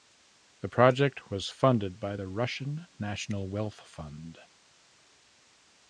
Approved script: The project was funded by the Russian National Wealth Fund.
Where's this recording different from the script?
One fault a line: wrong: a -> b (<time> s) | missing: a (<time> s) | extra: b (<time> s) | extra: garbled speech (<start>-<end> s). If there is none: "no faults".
no faults